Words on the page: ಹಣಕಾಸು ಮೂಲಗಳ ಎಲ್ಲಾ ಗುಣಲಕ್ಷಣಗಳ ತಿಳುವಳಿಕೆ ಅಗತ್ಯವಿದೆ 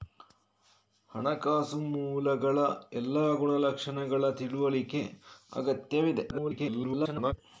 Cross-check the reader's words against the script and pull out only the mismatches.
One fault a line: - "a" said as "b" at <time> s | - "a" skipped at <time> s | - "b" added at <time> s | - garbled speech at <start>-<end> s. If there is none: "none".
- garbled speech at 6.3-7.3 s